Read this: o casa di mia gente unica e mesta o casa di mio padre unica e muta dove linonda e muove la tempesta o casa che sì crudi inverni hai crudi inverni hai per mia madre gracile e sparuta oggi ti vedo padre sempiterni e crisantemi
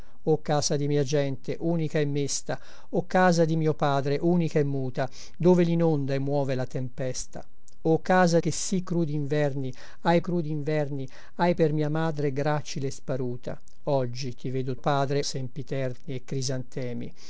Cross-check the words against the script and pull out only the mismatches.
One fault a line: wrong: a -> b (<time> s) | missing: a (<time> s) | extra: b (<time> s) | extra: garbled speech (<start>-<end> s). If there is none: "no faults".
no faults